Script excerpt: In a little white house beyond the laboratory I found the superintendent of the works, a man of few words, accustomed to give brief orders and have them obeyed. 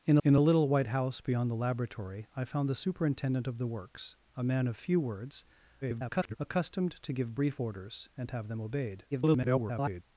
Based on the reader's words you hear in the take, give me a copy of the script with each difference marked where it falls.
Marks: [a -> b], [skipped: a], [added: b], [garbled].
In [added: in] a little white house beyond the laboratory I found the superintendent of the works, a man of few words, [garbled] accustomed to give brief orders and have them obeyed. [garbled]